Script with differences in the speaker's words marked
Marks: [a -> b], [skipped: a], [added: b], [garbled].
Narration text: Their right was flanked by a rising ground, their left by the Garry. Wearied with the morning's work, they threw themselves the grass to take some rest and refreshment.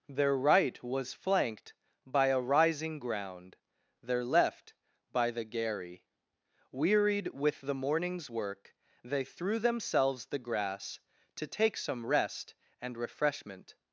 Their right was flanked by a rising ground, their left by the Garry. Wearied with the morning's work, they threw themselves the grass to take some rest and refreshment.